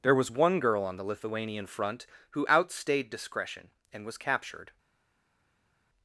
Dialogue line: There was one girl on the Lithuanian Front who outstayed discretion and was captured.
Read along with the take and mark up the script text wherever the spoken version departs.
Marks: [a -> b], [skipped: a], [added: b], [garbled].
There was one girl on the Lithuanian Front who outstayed discretion and was captured.